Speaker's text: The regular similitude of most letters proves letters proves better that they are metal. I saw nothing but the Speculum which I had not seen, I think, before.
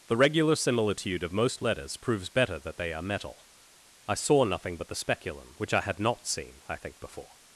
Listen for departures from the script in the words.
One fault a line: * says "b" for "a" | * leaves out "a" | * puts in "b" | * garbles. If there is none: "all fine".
* leaves out "letters proves"